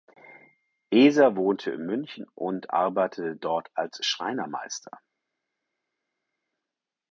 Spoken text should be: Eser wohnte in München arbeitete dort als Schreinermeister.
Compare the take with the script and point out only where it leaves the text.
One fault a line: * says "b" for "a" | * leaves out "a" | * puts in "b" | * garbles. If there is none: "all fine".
* puts in "und"